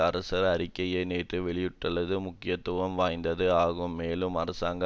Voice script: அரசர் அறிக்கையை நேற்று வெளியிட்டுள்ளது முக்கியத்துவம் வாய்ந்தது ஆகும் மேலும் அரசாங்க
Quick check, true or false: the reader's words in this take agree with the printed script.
true